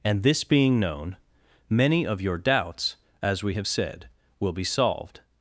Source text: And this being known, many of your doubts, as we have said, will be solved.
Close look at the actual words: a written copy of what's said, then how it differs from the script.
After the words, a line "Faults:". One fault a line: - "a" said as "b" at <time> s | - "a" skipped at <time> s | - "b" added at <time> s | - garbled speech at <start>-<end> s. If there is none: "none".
And this being known, many of your doubts, as we have said, will be solved.
Faults:
none